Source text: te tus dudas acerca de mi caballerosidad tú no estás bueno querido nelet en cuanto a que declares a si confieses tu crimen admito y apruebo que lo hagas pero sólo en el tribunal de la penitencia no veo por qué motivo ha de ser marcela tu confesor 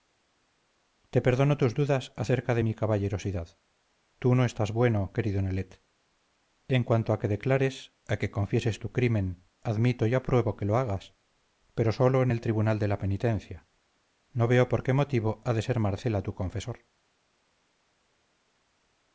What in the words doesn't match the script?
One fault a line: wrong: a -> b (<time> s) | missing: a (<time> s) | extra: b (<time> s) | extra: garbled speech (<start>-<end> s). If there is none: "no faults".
extra: perdono (1.2 s)
wrong: si -> que (8.2 s)